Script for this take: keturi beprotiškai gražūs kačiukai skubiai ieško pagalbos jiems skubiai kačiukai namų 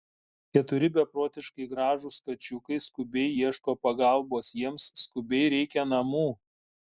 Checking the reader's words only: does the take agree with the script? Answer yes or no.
no